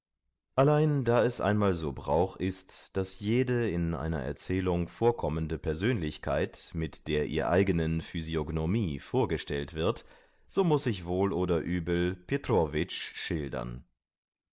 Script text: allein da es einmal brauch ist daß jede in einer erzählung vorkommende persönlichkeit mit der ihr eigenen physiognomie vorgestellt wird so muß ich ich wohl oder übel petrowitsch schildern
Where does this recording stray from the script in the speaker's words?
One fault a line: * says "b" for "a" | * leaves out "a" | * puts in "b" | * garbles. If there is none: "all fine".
* puts in "so"
* leaves out "ich"